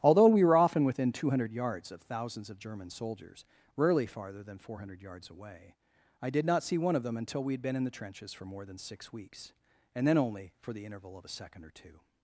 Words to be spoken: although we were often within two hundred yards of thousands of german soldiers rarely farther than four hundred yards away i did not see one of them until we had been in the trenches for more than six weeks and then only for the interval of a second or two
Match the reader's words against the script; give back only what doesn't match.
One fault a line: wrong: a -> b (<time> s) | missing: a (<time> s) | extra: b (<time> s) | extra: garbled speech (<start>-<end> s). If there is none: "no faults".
no faults